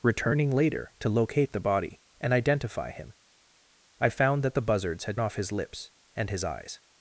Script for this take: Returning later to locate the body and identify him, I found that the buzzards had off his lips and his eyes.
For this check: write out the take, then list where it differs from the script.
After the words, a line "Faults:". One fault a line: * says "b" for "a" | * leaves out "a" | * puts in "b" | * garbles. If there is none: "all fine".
Returning later to locate the body and identify him, I found that the buzzards had off his lips and his eyes.
Faults:
all fine